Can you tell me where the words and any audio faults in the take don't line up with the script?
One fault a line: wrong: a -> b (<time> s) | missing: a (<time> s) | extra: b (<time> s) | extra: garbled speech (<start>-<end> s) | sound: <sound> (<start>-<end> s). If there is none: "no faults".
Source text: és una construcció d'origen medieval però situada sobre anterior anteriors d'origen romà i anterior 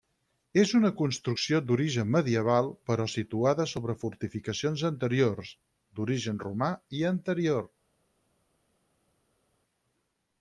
wrong: anterior -> fortificacions (4.0 s)